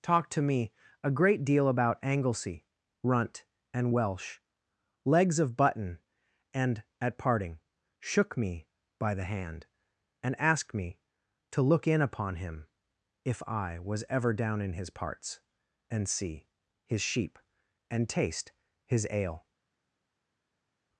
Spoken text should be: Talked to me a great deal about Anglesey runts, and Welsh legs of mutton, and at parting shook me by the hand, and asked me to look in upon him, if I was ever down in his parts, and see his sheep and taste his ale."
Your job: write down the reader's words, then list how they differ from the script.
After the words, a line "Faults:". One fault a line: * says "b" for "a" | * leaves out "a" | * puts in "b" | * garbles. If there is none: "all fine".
Talked to me a great deal about Anglesey runt, and Welsh legs of button, and at parting shook me by the hand, and asked me to look in upon him, if I was ever down in his parts, and see his sheep and taste his ale."
Faults:
* says "runt" for "runts"
* says "button" for "mutton"